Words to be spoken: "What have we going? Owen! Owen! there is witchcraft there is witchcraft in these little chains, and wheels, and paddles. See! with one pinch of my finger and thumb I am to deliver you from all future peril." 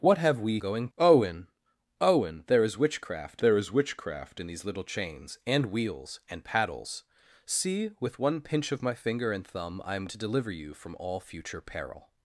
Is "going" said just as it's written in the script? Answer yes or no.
yes